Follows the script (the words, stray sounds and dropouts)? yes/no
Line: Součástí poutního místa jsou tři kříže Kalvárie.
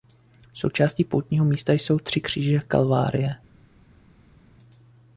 yes